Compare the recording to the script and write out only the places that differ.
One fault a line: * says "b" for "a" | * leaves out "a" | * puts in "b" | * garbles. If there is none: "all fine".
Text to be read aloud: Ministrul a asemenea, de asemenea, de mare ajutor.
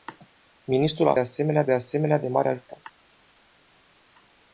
all fine